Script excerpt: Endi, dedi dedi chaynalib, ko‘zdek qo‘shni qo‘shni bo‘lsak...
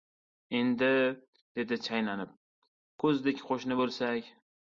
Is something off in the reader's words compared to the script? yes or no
yes